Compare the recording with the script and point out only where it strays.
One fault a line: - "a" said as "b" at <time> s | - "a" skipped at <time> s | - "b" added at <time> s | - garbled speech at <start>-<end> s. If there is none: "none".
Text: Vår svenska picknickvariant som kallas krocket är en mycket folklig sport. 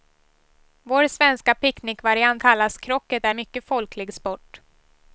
- "som" skipped at 2.4 s
- "en" skipped at 3.3 s